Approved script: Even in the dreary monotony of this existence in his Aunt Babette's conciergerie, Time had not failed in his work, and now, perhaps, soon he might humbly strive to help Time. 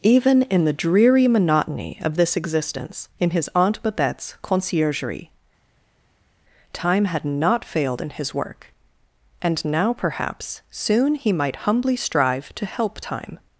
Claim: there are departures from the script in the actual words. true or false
false